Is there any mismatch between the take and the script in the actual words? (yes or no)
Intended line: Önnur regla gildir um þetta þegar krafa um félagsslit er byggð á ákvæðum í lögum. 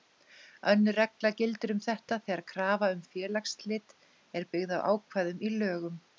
no